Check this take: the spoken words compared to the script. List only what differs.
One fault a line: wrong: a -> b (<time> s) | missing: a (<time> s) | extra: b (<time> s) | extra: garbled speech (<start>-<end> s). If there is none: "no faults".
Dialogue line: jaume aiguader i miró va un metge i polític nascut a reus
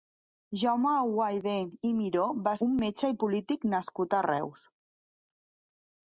no faults